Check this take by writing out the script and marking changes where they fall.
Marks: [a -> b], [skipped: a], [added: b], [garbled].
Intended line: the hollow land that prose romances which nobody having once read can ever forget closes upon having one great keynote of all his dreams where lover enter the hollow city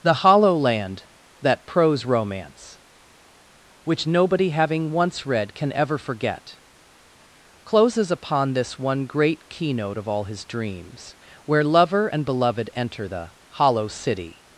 the hollow land that prose [romances -> romance] which nobody having once read can ever forget closes upon [having -> this] one great keynote of all his dreams where lover [added: and beloved] enter the hollow city